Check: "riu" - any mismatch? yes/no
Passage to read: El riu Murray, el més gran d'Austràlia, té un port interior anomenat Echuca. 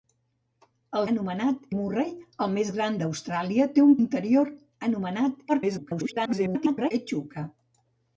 yes